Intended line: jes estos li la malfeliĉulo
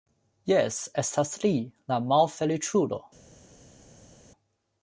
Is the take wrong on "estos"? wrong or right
wrong